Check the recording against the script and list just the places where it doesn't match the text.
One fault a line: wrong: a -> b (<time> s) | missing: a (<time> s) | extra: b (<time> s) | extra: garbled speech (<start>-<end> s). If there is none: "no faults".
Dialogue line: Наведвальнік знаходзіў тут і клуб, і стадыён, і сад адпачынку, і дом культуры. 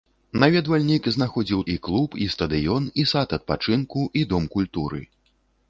missing: тут (1.6 s)